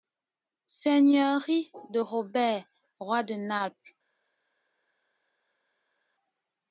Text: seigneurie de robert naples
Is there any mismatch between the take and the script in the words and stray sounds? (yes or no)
yes